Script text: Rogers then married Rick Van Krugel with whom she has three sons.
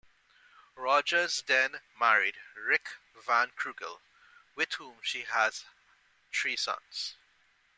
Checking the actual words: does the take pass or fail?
pass